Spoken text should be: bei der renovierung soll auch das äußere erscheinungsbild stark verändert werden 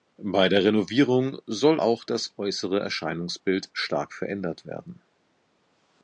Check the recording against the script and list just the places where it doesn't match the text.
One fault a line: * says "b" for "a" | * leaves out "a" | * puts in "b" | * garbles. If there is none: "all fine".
all fine